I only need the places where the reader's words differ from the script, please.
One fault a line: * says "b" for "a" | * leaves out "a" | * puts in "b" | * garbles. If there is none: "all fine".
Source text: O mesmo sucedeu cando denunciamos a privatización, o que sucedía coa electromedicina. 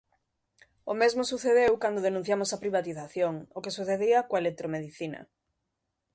all fine